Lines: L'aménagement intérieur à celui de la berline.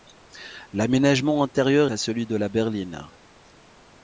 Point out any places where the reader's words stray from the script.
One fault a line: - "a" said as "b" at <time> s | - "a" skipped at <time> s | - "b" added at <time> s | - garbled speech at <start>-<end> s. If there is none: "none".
none